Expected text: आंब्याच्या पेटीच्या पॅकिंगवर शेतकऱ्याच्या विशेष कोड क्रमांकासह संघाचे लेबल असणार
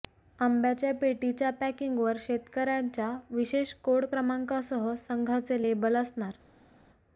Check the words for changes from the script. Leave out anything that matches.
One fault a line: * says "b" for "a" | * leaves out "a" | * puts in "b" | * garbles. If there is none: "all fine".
all fine